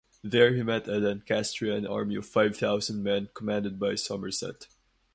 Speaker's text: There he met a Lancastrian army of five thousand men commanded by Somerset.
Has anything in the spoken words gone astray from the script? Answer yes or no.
no